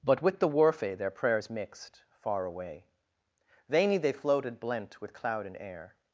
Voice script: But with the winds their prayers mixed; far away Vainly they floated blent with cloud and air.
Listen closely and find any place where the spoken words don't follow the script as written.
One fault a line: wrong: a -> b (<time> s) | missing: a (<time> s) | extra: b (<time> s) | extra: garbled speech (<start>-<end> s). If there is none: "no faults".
wrong: winds -> worfe (0.5 s)